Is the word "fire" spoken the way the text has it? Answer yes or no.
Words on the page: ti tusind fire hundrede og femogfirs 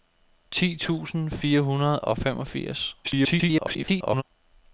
yes